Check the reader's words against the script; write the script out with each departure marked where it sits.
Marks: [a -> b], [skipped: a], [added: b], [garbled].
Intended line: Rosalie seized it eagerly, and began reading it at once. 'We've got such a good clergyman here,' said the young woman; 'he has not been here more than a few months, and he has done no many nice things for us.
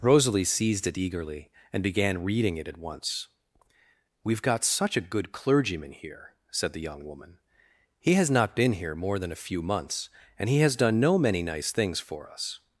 Rosalie seized it eagerly, and began reading it at once. 'We've got such a good clergyman here,' said the young woman; 'he has not been here more than a few months, and he has done no many nice things for us.